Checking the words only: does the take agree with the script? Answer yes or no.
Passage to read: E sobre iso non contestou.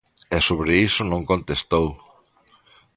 yes